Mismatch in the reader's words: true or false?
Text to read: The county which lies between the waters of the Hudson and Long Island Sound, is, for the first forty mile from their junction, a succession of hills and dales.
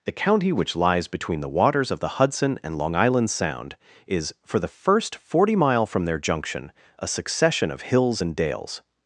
false